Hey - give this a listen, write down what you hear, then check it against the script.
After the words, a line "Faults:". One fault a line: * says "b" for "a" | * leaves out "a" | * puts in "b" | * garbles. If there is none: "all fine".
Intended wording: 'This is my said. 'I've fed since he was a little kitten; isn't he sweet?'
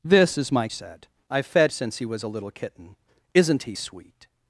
'This is my said. 'I've fed since he was a little kitten; isn't he sweet?'
Faults:
all fine